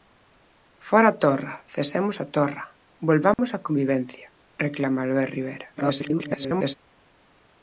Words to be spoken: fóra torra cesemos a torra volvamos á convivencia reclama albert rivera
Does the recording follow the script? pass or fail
fail